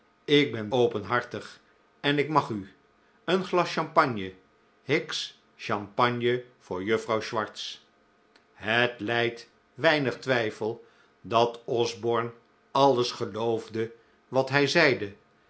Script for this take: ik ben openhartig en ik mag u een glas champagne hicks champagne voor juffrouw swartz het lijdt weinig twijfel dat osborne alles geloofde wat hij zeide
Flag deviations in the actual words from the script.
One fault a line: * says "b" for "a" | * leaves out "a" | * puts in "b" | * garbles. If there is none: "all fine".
all fine